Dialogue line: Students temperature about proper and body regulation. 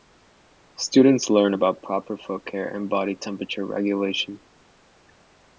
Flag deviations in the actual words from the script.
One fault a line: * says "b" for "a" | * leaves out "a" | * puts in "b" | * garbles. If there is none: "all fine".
* says "learn" for "temperature"
* puts in "foot care"
* puts in "temperature"